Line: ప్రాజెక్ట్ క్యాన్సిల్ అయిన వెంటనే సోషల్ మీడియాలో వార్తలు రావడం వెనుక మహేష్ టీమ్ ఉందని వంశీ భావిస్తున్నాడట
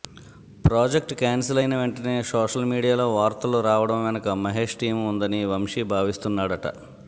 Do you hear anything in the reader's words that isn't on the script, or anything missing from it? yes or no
no